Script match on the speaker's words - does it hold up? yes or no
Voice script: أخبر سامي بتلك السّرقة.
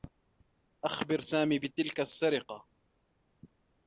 yes